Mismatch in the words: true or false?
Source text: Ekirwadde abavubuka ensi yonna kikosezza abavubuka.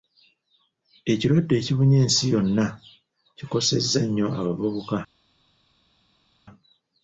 true